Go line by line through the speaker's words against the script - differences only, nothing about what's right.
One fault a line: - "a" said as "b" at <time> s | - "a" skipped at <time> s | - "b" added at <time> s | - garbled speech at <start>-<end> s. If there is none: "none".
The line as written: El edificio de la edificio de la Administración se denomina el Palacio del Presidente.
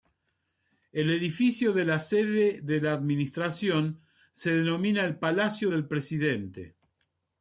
- "edificio" said as "sede" at 2.0 s